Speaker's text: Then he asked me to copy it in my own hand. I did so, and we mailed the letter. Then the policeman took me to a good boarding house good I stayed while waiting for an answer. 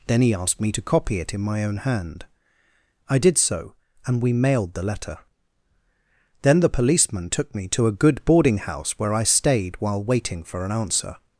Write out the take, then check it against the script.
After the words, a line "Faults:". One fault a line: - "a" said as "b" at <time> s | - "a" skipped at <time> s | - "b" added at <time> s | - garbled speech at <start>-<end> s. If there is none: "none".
Then he asked me to copy it in my own hand. I did so, and we mailed the letter. Then the policeman took me to a good boarding house where I stayed while waiting for an answer.
Faults:
- "good" said as "where" at 9.0 s